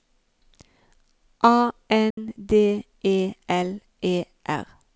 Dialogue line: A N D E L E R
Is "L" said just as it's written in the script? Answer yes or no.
yes